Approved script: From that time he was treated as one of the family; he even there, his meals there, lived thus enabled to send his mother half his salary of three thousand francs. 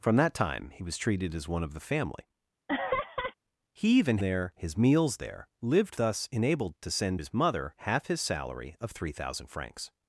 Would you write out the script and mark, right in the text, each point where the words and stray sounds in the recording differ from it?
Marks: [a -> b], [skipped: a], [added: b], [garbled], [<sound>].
From that time he was treated as one of the family; [laugh] he even there, his meals there, lived thus enabled to send his mother half his salary of three thousand francs.